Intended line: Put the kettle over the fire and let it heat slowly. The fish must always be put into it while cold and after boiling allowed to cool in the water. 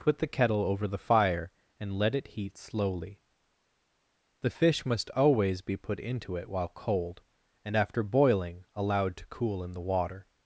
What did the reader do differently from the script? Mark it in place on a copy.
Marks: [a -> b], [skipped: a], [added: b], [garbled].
Put the kettle over the fire and let it heat slowly. The fish must always be put into it while cold and after boiling allowed to cool in the water.